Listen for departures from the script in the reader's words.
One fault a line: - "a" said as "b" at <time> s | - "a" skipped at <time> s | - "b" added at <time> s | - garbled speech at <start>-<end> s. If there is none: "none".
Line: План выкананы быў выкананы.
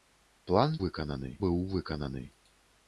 none